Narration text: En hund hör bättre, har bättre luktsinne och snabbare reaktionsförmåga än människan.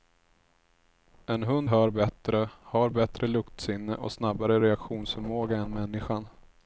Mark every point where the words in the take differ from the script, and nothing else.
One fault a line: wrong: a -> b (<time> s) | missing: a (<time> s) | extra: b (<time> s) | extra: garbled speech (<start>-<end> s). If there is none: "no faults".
no faults